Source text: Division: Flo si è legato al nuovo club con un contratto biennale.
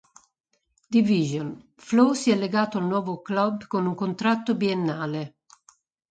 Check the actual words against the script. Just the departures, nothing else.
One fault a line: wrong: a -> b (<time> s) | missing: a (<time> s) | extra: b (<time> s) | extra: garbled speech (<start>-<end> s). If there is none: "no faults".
no faults